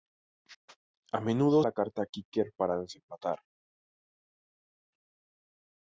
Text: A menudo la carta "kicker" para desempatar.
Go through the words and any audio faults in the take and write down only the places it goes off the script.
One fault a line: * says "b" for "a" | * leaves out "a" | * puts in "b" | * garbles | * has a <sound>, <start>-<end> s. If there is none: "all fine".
all fine